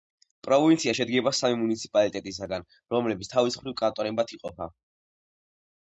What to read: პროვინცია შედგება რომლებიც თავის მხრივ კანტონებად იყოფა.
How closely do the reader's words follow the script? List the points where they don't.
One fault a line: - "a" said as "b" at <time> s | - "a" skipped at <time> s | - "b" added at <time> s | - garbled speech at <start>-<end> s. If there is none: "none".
- "სამი მუნიციპალიტეტისაგან" added at 1.4 s